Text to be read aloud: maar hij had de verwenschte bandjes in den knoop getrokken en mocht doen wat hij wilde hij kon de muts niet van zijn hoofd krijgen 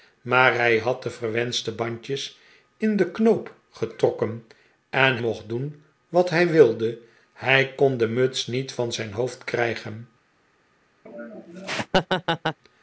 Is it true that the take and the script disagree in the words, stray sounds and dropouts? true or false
true